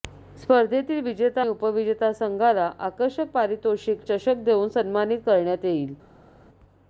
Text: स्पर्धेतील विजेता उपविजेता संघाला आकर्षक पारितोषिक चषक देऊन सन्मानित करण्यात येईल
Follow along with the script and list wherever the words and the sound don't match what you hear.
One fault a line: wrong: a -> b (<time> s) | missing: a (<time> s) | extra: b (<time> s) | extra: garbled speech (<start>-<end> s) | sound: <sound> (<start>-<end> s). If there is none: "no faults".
no faults